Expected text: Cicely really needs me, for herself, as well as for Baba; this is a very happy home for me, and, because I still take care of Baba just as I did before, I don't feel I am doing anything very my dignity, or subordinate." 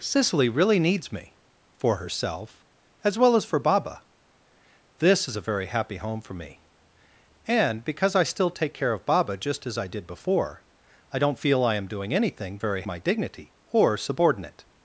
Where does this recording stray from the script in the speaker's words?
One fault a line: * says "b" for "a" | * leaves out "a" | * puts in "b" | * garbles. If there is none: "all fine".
all fine